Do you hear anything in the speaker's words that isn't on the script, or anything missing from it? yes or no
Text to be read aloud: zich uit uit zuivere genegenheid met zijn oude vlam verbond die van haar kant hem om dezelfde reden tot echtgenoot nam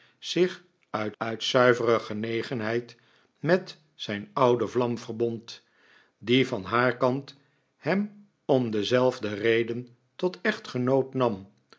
no